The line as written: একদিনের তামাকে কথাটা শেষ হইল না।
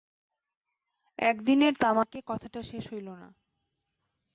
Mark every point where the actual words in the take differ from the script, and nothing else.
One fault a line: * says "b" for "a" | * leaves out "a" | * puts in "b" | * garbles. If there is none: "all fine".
all fine